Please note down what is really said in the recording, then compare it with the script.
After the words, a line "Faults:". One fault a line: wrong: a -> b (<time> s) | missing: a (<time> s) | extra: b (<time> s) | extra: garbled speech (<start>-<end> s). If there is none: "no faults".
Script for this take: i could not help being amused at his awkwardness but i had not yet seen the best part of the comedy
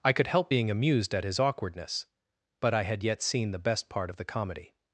i could help being amused at his awkwardness but i had yet seen the best part of the comedy
Faults:
missing: not (0.3 s)
missing: not (3.0 s)